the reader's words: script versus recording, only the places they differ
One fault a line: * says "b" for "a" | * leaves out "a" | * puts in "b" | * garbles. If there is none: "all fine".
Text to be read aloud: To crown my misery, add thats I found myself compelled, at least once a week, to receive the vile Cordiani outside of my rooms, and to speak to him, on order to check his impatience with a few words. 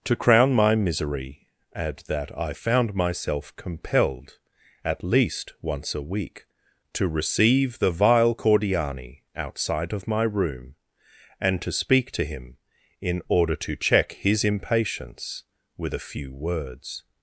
* says "that" for "thats"
* says "room" for "rooms"
* says "in" for "on"